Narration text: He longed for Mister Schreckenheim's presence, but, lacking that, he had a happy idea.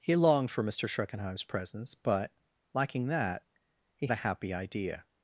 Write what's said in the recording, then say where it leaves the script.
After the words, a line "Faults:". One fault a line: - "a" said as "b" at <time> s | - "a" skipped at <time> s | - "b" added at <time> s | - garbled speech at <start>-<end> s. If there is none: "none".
He longed for Mister Schreckenheim's presence, but, lacking that, he a happy idea.
Faults:
- "had" skipped at 4.1 s